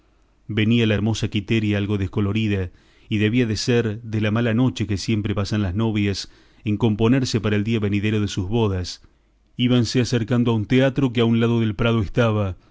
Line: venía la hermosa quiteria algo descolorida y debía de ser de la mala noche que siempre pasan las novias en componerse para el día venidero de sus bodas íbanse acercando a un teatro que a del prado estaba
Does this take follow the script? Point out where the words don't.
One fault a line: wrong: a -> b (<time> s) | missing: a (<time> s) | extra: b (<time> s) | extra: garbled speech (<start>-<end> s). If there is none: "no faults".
extra: un lado (11.2 s)